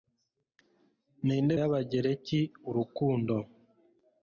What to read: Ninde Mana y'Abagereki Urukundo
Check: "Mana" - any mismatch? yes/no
yes